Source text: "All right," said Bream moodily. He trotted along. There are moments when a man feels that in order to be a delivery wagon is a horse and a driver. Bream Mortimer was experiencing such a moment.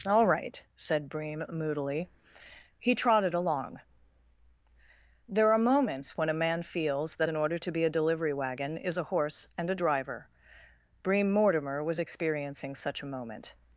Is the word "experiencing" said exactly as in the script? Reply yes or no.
yes